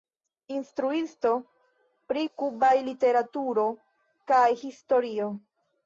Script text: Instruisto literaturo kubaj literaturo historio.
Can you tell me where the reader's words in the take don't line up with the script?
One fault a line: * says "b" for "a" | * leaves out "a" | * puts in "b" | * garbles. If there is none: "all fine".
* says "pri" for "literaturo"
* puts in "kaj"